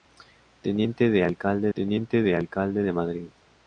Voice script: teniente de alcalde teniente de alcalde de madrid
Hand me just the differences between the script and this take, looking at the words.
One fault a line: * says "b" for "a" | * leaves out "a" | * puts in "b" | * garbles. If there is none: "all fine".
all fine